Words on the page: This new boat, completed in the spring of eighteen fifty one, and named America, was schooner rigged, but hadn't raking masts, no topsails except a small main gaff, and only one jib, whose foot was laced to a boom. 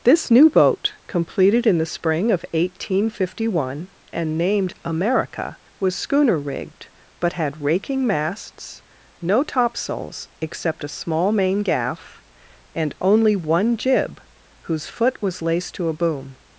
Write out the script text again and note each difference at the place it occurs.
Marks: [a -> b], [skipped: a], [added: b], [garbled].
This new boat, completed in the spring of eighteen fifty one, and named America, was schooner rigged, but [hadn't -> had] raking masts, no topsails except a small main gaff, and only one jib, whose foot was laced to a boom.